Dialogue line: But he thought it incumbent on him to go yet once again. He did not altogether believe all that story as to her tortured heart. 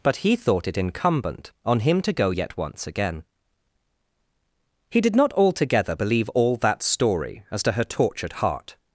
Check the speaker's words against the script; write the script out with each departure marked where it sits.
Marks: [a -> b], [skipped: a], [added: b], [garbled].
But he thought it incumbent on him to go yet once again. He did not altogether believe all that story as to her tortured heart.